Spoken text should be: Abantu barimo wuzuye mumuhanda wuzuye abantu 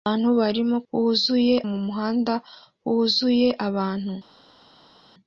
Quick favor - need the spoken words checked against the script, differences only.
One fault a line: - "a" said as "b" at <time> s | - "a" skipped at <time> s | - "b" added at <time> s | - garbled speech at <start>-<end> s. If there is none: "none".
none